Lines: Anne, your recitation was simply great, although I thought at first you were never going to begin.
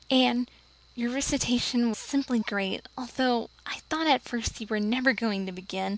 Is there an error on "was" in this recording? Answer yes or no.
yes